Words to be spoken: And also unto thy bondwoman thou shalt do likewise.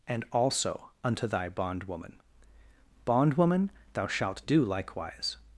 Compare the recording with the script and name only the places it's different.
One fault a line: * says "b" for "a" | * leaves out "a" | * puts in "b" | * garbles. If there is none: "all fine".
* puts in "bondwoman"